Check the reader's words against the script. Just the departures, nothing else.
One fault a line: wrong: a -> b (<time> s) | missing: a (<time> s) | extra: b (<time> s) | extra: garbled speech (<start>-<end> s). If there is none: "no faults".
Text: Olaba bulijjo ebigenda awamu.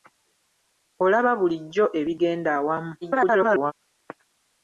extra: garbled speech (3.0-3.7 s)